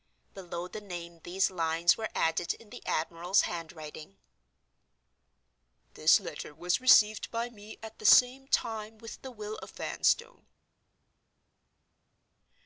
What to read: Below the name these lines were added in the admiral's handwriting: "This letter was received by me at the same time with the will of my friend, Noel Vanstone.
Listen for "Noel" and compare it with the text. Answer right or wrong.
wrong